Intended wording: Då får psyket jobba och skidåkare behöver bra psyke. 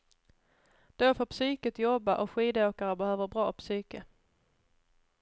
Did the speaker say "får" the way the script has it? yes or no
yes